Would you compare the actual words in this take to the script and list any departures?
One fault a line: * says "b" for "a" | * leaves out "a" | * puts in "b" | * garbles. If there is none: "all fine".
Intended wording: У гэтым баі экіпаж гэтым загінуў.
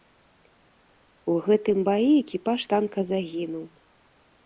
* says "танка" for "гэтым"